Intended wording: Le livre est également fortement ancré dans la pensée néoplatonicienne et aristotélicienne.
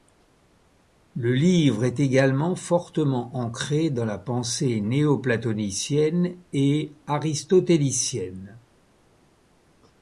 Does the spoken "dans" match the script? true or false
true